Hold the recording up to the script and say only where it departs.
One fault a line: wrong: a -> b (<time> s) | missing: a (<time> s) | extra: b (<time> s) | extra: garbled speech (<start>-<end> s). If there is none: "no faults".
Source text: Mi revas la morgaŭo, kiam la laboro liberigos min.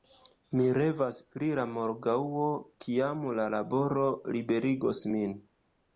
extra: pri (1.4 s)